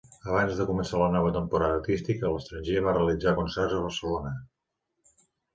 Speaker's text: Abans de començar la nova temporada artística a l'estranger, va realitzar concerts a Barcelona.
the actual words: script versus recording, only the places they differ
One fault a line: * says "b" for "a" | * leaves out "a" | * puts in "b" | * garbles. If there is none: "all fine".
all fine